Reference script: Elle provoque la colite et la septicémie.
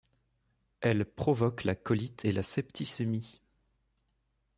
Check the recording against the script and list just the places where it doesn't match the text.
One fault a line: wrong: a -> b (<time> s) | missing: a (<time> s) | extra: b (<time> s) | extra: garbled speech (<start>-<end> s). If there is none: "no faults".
no faults